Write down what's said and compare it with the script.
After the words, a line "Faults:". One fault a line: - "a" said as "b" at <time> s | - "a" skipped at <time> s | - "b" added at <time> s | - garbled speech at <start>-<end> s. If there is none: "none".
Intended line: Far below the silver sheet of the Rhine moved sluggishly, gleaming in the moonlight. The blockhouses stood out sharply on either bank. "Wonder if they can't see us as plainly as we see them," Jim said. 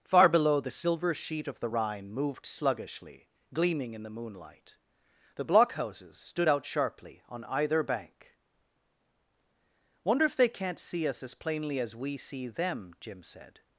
Far below the silver sheet of the Rhine moved sluggishly, gleaming in the moonlight. The blockhouses stood out sharply on either bank. "Wonder if they can't see us as plainly as we see them," Jim said.
Faults:
none